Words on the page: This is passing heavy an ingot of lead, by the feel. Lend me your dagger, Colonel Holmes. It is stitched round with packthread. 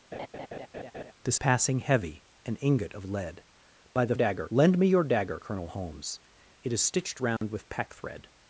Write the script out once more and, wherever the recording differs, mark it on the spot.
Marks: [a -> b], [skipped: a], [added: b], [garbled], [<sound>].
[laugh] This [skipped: is] passing heavy an ingot of lead, by the [feel. -> dagger] Lend me your dagger, Colonel Holmes. It is stitched round [dropout] with packthread.